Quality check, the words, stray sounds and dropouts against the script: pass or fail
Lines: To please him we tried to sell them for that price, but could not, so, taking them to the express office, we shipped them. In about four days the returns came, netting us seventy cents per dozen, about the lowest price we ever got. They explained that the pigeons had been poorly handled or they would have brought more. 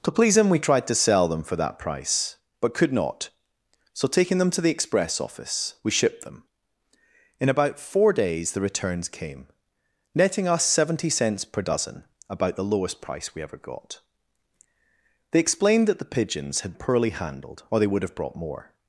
fail